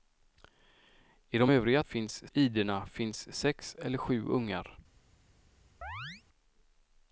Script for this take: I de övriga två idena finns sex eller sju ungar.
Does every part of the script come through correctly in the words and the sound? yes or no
no